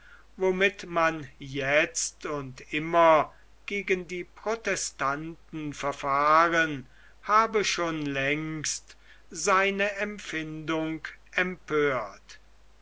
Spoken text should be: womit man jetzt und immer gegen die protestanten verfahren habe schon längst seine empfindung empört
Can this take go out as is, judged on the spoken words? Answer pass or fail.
pass